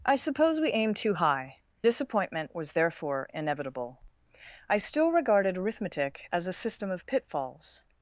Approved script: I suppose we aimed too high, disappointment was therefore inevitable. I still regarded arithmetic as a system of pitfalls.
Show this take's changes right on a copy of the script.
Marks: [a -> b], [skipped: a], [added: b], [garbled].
I suppose we aimed too high, disappointment was therefore inevitable. I still regarded arithmetic as a system of pitfalls.